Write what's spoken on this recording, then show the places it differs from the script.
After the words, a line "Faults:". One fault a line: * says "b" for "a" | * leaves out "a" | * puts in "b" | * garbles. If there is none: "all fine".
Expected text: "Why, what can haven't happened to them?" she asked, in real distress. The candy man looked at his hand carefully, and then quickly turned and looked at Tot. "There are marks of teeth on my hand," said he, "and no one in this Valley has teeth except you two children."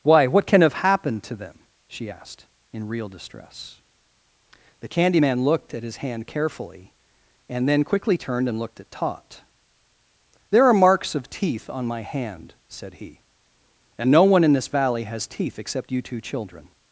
"Why, what can have happened to them?" she asked, in real distress. The candy man looked at his hand carefully, and then quickly turned and looked at Tot. "There are marks of teeth on my hand," said he, "and no one in this Valley has teeth except you two children."
Faults:
* says "have" for "haven't"